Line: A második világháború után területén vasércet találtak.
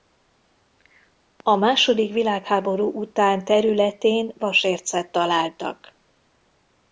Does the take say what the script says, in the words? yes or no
yes